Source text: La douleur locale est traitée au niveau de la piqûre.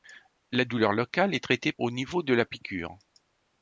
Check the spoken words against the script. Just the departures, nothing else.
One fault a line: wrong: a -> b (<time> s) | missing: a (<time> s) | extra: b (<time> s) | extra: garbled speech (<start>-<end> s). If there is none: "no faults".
no faults